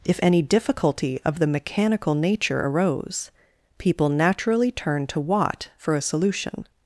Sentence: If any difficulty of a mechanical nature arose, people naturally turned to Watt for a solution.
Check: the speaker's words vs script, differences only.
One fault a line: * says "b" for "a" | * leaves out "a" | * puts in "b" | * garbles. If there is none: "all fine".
* says "the" for "a"